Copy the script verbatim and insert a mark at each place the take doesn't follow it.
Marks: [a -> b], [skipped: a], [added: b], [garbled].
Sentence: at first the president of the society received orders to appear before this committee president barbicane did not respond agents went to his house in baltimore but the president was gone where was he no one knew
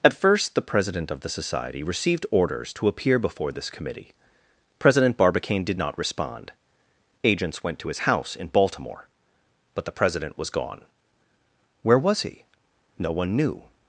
at first the president of the society received orders to appear before this committee president barbicane did not respond agents went to his house in baltimore but the president was gone where was he no one knew